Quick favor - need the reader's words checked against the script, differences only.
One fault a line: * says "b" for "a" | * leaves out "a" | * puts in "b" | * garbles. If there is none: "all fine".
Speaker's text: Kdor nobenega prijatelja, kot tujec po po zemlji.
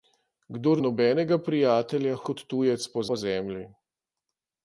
all fine